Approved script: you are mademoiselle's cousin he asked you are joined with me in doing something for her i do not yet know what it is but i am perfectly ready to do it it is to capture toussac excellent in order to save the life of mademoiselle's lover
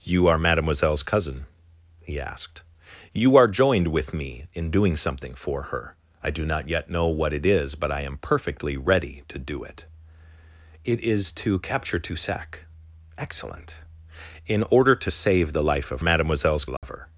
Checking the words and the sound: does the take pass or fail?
fail